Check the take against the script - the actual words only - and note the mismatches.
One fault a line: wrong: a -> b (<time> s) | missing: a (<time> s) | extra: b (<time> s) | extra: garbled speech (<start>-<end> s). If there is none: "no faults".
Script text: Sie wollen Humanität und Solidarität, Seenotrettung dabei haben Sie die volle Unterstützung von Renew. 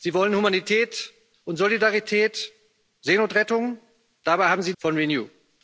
missing: die volle Unterstützung (4.7 s)